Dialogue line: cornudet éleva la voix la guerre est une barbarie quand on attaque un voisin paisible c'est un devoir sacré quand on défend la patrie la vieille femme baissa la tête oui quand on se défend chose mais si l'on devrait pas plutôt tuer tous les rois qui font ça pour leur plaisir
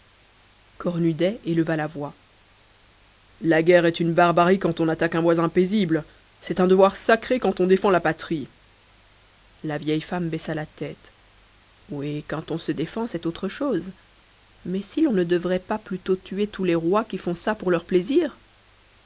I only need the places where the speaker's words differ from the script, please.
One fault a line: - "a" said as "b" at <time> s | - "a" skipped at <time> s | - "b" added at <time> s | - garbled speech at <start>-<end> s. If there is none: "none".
- "c'est autre" added at 13.1 s
- "ne" added at 15.1 s